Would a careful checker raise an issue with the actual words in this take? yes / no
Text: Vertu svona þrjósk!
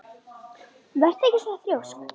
yes